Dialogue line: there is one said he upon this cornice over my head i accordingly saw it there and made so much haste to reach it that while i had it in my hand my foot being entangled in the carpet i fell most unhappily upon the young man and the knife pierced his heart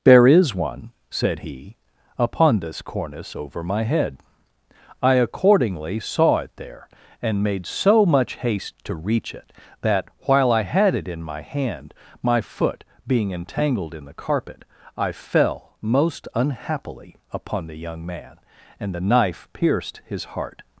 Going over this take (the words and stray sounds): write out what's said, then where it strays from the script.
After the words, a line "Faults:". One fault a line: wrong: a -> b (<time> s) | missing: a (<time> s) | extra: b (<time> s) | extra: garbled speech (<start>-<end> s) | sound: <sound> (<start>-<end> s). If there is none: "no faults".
there is one said he upon this cornice over my head i accordingly saw it there and made so much haste to reach it that while i had it in my hand my foot being entangled in the carpet i fell most unhappily upon the young man and the knife pierced his heart
Faults:
no faults